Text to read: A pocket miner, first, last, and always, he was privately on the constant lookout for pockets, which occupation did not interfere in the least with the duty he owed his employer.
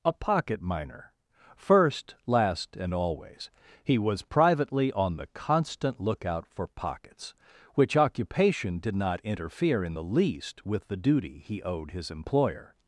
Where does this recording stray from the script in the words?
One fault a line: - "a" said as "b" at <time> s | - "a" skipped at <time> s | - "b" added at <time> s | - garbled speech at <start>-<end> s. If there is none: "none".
none